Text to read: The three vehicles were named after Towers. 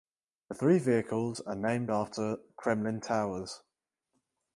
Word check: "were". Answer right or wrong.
wrong